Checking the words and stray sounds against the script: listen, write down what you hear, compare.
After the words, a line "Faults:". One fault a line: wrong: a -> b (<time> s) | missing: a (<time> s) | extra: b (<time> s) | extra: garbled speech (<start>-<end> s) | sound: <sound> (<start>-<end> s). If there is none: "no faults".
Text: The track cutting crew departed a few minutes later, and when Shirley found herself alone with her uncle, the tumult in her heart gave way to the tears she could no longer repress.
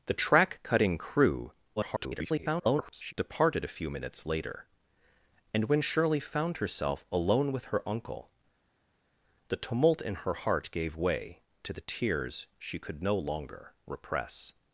The track cutting crew [garbled] departed a few minutes later, and when Shirley found herself alone with her uncle, the tumult in her heart gave way to the tears she could no longer repress.
Faults:
extra: garbled speech (1.8-3.1 s)